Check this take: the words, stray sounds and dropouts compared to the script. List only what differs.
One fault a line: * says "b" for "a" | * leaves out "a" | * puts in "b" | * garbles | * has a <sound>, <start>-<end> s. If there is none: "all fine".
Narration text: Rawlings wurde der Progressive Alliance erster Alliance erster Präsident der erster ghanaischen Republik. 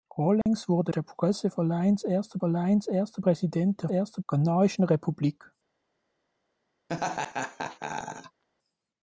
* has a dropout, 0.4-0.5 s
* has a laugh, 6.9-8.4 s